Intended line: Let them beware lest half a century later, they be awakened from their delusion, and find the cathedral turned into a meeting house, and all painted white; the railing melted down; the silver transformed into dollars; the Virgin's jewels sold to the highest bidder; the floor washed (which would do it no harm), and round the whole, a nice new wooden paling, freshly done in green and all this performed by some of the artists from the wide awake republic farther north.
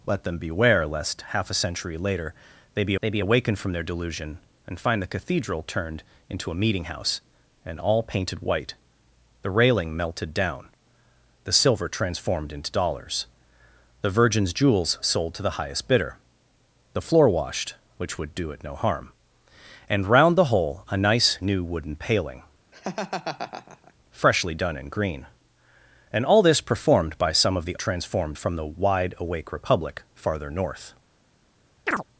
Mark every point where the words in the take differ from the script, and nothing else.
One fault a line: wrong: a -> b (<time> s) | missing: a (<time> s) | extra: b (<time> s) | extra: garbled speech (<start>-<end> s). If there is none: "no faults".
extra: they be (3.0 s)
wrong: artists -> transformed (27.7 s)